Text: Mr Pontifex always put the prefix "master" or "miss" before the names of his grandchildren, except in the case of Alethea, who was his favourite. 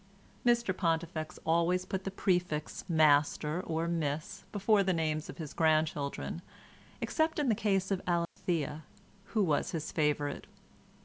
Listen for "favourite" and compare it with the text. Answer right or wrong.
right